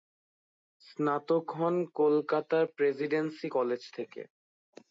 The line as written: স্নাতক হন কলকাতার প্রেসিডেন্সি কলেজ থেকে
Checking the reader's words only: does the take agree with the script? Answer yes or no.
yes